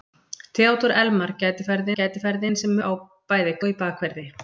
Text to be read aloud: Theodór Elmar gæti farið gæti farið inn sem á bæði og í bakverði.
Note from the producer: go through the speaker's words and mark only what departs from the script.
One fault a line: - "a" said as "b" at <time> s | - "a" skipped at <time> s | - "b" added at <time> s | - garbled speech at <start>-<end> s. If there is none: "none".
none